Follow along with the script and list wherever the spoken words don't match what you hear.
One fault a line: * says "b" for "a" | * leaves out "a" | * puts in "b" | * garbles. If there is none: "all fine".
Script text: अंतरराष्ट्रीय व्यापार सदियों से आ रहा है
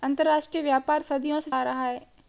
all fine